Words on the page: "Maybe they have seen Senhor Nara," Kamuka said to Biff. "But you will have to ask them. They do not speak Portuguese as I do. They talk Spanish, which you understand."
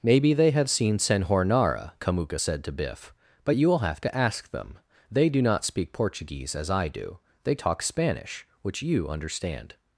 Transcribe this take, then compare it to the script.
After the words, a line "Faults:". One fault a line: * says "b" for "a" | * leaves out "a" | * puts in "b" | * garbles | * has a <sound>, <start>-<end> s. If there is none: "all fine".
"Maybe they have seen Senhor Nara," Kamuka said to Biff. "But you will have to ask them. They do not speak Portuguese as I do. They talk Spanish, which you understand."
Faults:
all fine